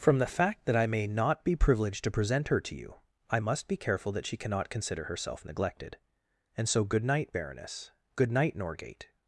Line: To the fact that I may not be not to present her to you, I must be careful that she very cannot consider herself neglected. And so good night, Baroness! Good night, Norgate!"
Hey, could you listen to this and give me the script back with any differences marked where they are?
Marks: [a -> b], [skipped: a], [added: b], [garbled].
[To -> From] the fact that I may not be [not -> privileged] to present her to you, I must be careful that she [skipped: very] cannot consider herself neglected. And so good night, Baroness! Good night, Norgate!"